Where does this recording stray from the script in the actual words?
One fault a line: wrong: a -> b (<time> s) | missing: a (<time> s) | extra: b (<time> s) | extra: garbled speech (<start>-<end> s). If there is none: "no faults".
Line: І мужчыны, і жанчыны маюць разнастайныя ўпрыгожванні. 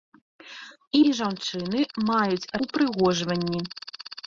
missing: мужчыны (1.0 s)
missing: разнастайныя (2.5 s)